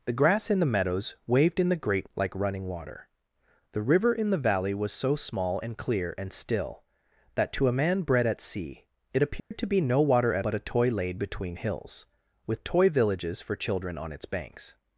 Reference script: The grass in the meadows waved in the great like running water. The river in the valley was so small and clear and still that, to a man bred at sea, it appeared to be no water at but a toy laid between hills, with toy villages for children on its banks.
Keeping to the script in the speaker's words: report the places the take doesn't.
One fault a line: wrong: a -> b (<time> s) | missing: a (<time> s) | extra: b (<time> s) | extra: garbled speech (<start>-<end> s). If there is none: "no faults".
no faults